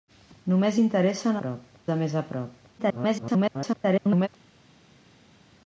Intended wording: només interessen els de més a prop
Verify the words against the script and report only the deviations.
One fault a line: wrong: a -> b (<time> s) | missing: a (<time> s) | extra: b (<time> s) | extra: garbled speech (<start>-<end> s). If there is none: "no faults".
wrong: els -> prop (1.4 s)
extra: garbled speech (2.8-4.3 s)